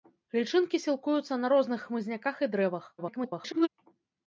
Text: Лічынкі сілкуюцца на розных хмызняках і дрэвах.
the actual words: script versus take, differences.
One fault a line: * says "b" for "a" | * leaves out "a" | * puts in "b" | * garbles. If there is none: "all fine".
* garbles